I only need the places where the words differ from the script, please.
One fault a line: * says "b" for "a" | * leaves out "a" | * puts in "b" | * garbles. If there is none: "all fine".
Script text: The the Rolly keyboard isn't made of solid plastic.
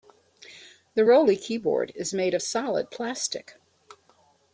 * leaves out "the"
* says "is" for "isn't"